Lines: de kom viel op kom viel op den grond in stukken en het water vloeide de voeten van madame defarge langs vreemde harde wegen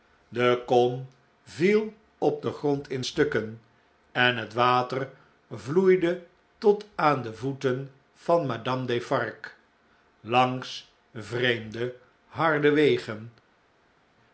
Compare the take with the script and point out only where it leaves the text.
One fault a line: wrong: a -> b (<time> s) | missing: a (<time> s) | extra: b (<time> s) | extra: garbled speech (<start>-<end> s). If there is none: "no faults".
missing: kom viel op (2.4 s)
extra: tot aan (6.6 s)